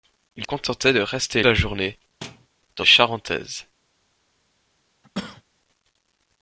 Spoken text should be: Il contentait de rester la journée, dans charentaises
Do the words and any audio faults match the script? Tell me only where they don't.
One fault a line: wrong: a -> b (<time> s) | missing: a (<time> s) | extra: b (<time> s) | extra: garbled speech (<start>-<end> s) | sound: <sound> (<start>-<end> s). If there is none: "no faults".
sound: thud (2.2-2.5 s)
sound: cough (5.0-5.4 s)